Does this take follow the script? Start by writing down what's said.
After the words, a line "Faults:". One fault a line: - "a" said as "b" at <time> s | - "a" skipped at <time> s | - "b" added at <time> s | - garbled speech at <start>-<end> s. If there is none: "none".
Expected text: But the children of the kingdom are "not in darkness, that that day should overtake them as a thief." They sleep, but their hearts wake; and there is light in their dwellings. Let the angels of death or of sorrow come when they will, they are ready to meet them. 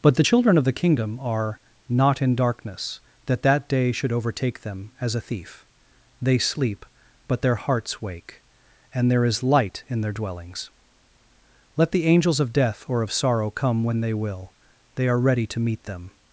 But the children of the kingdom are "not in darkness, that that day should overtake them as a thief." They sleep, but their hearts wake; and there is light in their dwellings. Let the angels of death or of sorrow come when they will, they are ready to meet them.
Faults:
none